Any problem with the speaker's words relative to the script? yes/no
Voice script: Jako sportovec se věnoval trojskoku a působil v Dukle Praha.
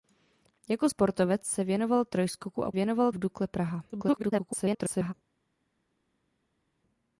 yes